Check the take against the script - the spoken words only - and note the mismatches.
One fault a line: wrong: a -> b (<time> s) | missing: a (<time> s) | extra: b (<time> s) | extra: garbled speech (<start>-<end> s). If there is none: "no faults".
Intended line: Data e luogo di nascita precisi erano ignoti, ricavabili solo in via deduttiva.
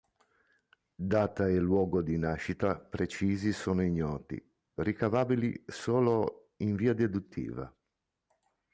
wrong: erano -> sono (3.5 s)